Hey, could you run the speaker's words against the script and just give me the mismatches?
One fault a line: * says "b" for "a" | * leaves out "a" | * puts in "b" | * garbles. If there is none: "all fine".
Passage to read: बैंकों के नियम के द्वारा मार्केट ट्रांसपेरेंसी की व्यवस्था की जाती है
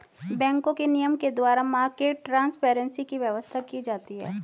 all fine